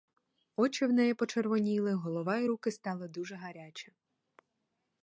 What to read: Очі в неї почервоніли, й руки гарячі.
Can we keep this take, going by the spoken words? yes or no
no